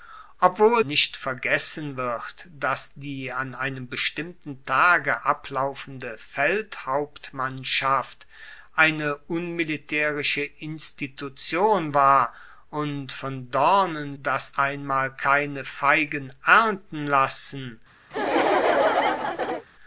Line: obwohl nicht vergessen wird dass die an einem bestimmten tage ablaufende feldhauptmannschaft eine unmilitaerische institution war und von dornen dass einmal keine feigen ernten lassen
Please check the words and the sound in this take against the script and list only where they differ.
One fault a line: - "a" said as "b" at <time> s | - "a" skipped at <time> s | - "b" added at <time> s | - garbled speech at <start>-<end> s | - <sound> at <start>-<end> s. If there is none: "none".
- laugh at 18.1-19.7 s